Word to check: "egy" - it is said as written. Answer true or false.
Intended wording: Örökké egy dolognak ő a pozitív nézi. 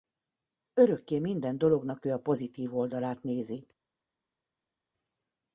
false